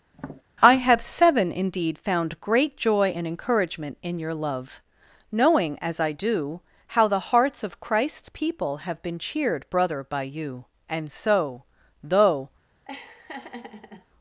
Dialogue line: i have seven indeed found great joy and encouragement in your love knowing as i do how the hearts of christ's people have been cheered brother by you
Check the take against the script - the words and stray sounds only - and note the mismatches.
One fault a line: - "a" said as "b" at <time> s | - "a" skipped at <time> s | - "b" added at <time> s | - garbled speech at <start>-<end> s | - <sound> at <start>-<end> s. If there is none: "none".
- tap at 0.1-0.4 s
- "and so though" added at 10.9 s
- laugh at 12.8-14.1 s